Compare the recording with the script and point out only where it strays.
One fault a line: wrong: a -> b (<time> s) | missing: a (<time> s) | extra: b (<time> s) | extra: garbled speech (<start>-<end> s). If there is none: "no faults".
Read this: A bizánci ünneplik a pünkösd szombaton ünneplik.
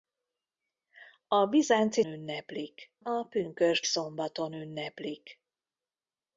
no faults